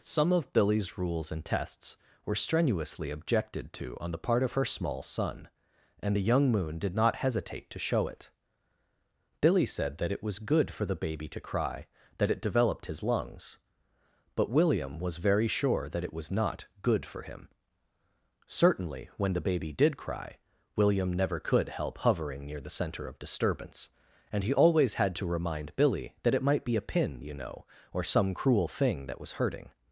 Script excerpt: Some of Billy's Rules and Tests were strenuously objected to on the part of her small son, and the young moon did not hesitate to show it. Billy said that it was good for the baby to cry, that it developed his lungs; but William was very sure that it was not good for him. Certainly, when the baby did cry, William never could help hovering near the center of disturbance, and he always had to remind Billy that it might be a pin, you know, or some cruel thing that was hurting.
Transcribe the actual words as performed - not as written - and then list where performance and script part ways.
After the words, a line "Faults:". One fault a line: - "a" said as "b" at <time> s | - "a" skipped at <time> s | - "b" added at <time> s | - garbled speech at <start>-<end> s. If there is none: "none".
Some of Billy's Rules and Tests were strenuously objected to on the part of her small son, and the young moon did not hesitate to show it. Billy said that it was good for the baby to cry, that it developed his lungs; but William was very sure that it was not good for him. Certainly, when the baby did cry, William never could help hovering near the center of disturbance, and he always had to remind Billy that it might be a pin, you know, or some cruel thing that was hurting.
Faults:
none